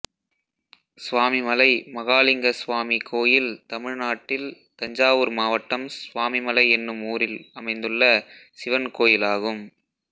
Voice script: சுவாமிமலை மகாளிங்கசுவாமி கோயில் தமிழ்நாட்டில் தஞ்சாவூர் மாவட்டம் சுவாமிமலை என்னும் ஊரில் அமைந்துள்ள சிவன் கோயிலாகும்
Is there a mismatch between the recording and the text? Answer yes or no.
no